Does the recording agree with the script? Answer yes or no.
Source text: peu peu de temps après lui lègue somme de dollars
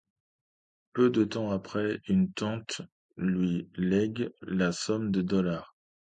no